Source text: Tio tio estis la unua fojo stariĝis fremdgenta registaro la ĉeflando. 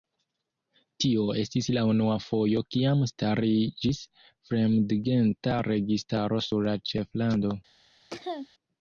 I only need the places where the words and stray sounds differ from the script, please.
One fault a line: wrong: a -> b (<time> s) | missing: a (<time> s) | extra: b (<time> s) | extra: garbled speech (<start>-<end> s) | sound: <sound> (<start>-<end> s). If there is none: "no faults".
missing: tio (1.2 s)
extra: kiam (2.8 s)
extra: sur (6.5 s)
sound: cough (8.1-8.5 s)